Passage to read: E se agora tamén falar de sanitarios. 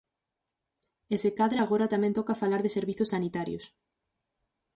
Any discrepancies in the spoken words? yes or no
yes